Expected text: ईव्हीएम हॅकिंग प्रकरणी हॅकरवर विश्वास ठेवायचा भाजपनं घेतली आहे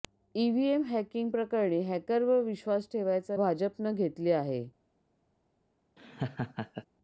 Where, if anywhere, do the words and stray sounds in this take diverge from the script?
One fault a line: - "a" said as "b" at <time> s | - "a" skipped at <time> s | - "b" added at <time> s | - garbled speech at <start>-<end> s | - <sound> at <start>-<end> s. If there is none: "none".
- laugh at 6.0-6.9 s